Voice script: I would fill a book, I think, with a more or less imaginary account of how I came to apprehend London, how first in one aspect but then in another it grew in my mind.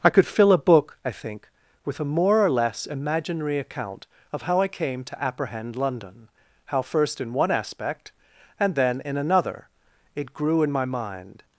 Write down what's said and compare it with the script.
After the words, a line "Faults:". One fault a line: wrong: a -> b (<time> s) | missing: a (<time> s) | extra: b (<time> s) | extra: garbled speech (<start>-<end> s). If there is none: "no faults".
I could fill a book, I think, with a more or less imaginary account of how I came to apprehend London, how first in one aspect and then in another it grew in my mind.
Faults:
wrong: would -> could (0.1 s)
wrong: but -> and (8.6 s)